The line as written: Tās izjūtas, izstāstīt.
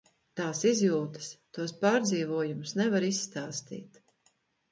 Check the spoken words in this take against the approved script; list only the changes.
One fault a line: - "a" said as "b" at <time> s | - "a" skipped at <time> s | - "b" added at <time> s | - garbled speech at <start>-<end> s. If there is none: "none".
- "tos pārdzīvojumus nevar" added at 1.6 s